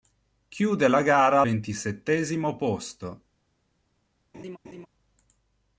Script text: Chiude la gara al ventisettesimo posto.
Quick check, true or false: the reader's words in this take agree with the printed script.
false